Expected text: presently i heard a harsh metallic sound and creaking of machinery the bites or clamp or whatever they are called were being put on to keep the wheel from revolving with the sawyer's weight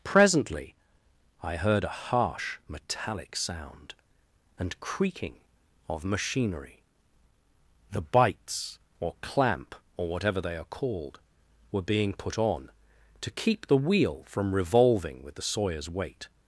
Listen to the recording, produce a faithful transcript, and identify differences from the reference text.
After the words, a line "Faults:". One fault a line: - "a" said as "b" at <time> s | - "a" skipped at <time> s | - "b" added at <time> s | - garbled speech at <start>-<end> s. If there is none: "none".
presently i heard a harsh metallic sound and creaking of machinery the bites or clamp or whatever they are called were being put on to keep the wheel from revolving with the sawyer's weight
Faults:
none